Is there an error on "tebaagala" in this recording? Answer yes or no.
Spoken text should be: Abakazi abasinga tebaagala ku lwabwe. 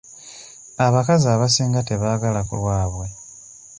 no